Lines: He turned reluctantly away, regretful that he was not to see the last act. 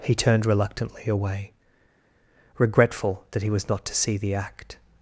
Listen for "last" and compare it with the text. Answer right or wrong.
wrong